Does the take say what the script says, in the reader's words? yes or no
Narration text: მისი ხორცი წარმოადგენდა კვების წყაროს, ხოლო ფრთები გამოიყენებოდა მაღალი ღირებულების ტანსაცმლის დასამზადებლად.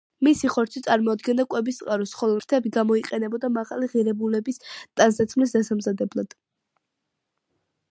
yes